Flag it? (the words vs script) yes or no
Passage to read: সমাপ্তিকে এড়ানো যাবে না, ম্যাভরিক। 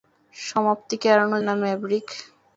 yes